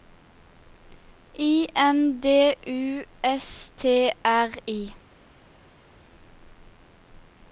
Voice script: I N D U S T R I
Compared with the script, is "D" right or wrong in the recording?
right